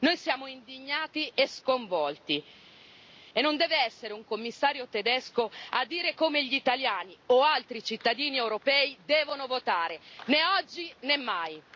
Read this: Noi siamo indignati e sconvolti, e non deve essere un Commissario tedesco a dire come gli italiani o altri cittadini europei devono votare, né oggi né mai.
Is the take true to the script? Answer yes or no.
yes